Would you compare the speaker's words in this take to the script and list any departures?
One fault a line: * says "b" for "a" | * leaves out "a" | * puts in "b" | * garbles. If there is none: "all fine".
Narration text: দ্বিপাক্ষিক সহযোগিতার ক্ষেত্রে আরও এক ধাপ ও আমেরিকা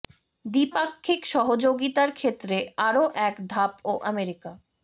all fine